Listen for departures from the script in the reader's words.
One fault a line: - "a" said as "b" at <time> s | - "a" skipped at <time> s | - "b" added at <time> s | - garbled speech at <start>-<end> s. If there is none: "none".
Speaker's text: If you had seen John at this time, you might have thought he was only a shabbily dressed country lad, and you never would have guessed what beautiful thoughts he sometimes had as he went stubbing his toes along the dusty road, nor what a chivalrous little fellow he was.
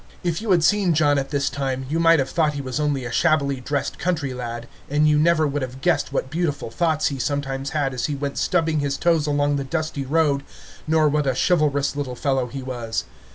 none